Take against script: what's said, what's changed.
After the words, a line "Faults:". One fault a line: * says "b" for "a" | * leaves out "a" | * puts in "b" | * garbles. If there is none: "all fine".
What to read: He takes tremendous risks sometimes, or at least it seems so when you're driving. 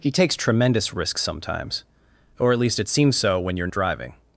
He takes tremendous risks sometimes, or at least it seems so when you're driving.
Faults:
all fine